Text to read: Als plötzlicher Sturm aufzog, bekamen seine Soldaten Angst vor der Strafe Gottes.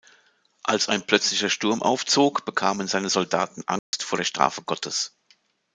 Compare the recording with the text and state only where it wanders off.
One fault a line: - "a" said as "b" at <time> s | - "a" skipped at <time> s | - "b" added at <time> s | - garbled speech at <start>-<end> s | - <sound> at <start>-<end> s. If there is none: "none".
- "ein" added at 0.9 s
- dropout at 3.8-3.9 s